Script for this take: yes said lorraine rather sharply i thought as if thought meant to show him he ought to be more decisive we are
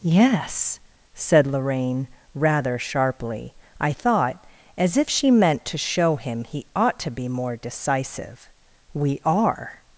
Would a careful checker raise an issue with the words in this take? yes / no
yes